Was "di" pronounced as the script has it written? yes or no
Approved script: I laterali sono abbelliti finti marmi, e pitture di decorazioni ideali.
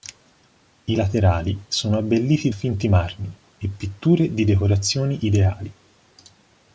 yes